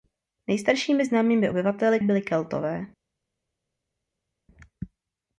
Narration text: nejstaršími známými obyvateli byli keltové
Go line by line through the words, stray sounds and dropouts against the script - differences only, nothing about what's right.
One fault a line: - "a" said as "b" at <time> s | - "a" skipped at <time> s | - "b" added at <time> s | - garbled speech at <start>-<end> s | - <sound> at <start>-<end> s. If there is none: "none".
none